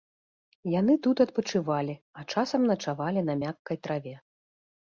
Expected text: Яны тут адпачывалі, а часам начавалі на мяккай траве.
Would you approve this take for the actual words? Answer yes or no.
yes